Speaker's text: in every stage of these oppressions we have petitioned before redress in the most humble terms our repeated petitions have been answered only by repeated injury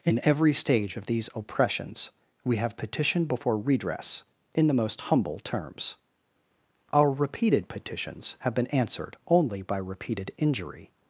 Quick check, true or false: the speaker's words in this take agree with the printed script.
true